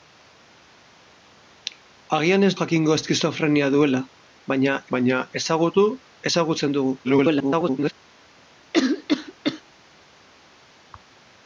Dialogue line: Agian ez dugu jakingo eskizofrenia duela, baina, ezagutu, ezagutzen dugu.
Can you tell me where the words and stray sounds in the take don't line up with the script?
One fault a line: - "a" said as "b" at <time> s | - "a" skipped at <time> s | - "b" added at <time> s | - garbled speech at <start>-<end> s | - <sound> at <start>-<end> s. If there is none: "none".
- "dugu" skipped at 2.5 s
- "baina" added at 5.0 s
- garbled speech at 7.0-7.9 s
- cough at 8.7-9.6 s